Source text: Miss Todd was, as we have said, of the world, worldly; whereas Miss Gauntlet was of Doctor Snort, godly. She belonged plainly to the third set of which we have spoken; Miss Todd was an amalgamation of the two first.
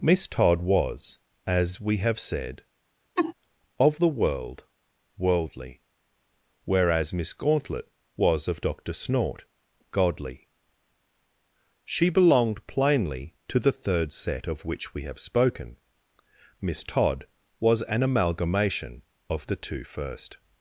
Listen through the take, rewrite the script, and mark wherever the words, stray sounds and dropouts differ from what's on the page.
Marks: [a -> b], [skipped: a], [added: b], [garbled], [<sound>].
Miss Todd was, as we have said, [laugh] of the world, worldly; whereas Miss Gauntlet was of Doctor Snort, godly. She belonged plainly to the third set of which we have spoken; Miss Todd was an amalgamation of the two first.